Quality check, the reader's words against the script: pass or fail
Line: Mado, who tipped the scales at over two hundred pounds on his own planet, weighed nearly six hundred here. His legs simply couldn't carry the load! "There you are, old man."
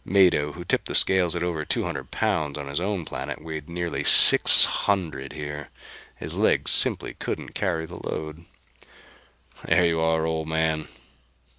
pass